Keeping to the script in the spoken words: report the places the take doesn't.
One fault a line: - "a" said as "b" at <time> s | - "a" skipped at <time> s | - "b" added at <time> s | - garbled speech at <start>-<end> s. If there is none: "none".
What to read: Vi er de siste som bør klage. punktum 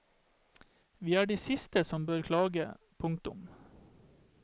none